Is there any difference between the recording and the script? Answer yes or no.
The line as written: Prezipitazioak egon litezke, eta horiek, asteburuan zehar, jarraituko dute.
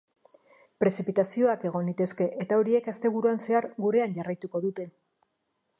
yes